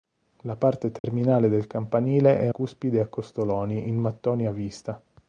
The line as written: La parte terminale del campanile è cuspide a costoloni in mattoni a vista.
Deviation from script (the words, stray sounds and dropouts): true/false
true